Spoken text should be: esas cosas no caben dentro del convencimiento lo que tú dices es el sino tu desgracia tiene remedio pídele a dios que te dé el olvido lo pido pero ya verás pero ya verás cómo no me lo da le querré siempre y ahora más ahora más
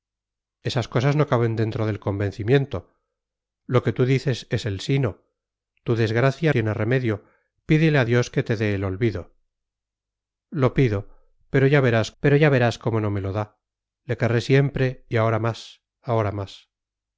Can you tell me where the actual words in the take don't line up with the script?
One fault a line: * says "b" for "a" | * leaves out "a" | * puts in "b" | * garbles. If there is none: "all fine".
all fine